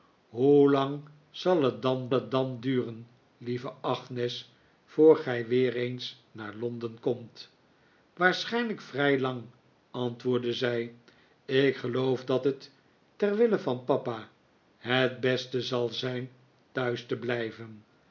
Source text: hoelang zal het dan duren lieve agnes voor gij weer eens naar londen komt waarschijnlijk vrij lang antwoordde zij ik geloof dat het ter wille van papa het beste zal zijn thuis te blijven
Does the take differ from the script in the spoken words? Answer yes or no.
yes